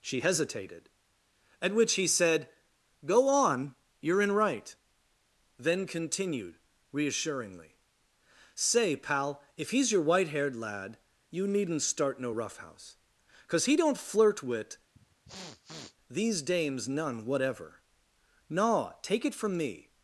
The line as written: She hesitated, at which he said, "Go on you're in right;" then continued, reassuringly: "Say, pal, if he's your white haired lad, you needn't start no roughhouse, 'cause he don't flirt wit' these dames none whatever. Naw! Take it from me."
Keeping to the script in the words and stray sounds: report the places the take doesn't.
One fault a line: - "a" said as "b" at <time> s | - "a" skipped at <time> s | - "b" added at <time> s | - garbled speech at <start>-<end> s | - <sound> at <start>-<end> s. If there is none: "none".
- sniff at 15.0-16.0 s